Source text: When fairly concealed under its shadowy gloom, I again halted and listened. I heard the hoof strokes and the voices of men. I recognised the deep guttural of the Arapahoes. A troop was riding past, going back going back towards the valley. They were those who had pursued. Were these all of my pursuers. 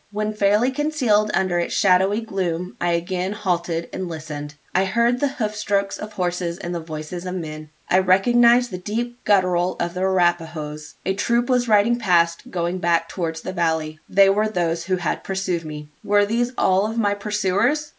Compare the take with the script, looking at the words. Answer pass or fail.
fail